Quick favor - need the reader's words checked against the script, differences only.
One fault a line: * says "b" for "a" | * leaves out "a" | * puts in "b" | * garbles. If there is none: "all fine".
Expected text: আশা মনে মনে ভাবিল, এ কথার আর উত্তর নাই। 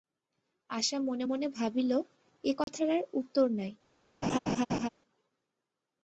all fine